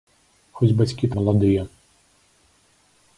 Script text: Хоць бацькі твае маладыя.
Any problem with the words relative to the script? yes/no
yes